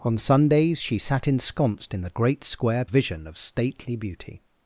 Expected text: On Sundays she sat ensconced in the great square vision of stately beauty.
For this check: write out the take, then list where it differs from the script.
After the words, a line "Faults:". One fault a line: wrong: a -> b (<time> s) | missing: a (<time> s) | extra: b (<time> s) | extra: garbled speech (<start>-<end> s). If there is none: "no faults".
On Sundays she sat ensconced in the great square vision of stately beauty.
Faults:
no faults